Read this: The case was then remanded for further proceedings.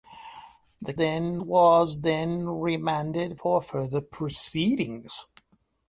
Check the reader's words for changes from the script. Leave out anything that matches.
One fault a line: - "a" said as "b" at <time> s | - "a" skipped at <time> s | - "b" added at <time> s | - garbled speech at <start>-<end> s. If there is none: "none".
- "case" said as "then" at 1.0 s